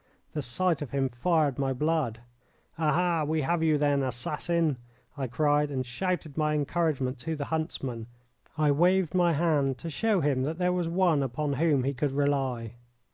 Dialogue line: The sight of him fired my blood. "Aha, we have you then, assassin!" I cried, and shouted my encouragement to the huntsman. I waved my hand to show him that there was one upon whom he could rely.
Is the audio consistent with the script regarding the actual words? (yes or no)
yes